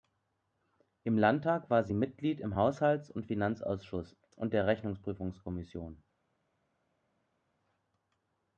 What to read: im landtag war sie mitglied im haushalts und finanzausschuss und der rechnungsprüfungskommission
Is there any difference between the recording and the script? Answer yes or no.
no